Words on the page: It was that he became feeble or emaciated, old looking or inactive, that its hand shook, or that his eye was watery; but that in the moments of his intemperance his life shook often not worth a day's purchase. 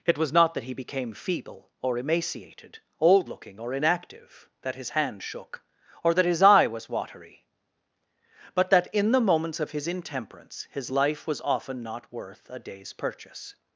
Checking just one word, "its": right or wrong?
wrong